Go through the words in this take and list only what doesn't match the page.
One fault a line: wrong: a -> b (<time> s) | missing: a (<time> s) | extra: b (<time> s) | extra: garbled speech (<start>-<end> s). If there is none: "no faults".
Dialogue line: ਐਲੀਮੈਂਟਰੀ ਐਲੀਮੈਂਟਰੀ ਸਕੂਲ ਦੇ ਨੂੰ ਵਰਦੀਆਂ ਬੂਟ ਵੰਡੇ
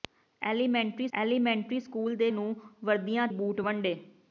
no faults